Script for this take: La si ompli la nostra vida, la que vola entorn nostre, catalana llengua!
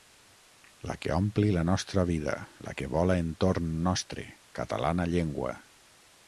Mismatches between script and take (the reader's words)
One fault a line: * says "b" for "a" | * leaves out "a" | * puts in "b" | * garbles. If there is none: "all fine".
* says "que" for "si"